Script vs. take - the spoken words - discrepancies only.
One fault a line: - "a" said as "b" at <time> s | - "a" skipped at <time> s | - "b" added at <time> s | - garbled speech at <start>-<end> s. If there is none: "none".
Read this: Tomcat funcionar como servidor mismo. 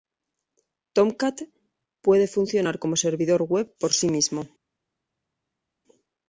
- "puede" added at 2.0 s
- "web por sí" added at 3.4 s